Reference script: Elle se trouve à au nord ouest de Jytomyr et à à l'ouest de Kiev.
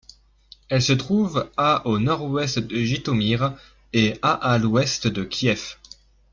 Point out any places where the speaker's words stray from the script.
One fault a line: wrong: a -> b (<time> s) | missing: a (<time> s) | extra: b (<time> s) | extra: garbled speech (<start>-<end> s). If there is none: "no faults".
no faults